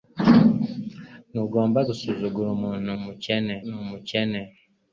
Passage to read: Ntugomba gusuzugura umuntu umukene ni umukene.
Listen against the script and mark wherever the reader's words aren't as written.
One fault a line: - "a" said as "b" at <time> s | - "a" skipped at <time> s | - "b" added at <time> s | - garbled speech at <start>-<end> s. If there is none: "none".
none